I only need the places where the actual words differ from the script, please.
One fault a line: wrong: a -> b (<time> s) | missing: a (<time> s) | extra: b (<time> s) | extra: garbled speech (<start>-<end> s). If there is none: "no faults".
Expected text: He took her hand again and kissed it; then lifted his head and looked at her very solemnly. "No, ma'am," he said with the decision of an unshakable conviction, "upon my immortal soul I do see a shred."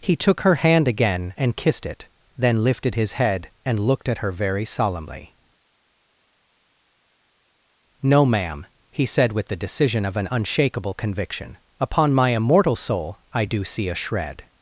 no faults